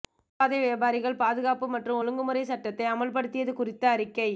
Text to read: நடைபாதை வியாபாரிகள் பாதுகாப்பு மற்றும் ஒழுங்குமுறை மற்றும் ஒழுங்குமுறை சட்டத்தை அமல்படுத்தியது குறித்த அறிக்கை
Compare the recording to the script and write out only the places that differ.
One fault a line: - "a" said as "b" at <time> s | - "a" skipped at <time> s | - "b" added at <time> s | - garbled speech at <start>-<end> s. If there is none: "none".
- "மற்றும் ஒழுங்குமுறை" skipped at 2.4 s